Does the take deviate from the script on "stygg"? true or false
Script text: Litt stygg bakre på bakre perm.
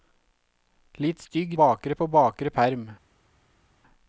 false